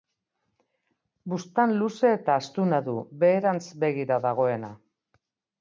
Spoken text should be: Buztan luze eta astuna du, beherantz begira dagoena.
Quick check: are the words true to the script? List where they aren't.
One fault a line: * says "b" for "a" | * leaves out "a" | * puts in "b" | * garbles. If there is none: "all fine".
all fine